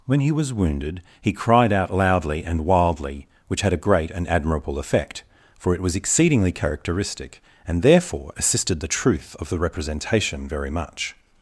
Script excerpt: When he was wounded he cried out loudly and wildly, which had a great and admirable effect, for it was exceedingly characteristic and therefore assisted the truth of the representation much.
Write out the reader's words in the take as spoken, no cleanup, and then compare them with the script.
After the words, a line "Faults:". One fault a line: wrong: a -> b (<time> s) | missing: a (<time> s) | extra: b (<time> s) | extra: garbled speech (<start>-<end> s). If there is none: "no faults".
When he was wounded he cried out loudly and wildly, which had a great and admirable effect, for it was exceedingly characteristic and therefore assisted the truth of the representation very much.
Faults:
extra: very (10.5 s)